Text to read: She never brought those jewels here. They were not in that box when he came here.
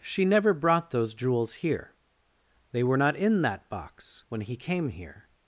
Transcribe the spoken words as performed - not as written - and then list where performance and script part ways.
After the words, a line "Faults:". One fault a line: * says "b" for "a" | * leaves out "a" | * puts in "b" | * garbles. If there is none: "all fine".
She never brought those jewels here. They were not in that box when he came here.
Faults:
all fine